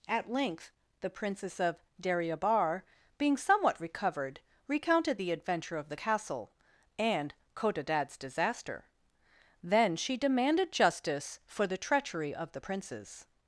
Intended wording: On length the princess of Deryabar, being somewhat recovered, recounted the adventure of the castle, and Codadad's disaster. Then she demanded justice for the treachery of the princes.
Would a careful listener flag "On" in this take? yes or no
yes